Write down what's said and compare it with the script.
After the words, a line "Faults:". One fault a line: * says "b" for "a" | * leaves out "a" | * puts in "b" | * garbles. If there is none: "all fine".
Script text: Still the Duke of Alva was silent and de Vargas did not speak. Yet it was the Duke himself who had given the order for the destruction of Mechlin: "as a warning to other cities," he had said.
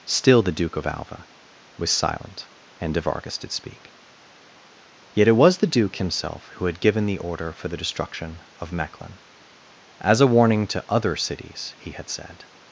Still the Duke of Alva was silent and de Vargas did speak. Yet it was the Duke himself who had given the order for the destruction of Mechlin: "as a warning to other cities," he had said.
Faults:
* leaves out "not"